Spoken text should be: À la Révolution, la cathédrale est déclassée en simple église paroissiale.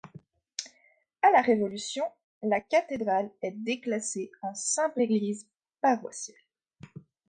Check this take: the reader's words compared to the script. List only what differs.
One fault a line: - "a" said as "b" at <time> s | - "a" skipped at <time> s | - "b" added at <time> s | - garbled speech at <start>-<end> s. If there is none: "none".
none